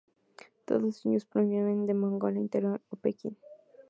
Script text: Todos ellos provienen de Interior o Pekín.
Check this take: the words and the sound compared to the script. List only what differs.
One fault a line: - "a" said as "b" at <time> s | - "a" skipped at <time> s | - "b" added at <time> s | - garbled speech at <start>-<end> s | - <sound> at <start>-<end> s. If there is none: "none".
- "Mongolia" added at 1.9 s